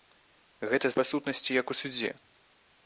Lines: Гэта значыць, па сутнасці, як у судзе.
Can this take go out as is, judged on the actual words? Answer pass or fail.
fail